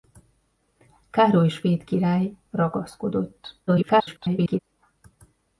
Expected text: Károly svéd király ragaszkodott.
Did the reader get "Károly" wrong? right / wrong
right